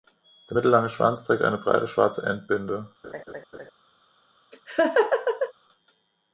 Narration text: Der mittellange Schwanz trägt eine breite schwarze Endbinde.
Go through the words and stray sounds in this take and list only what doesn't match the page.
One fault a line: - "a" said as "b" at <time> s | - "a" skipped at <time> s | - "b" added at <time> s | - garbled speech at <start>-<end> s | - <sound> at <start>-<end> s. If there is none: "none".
- laugh at 3.0-3.7 s
- laugh at 4.5-5.5 s